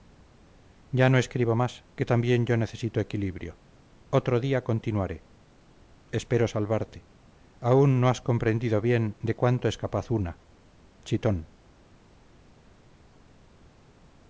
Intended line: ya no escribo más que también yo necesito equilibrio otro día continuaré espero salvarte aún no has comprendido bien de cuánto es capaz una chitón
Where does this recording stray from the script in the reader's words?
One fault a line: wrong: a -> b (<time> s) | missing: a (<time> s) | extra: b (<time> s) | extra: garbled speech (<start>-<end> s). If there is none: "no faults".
no faults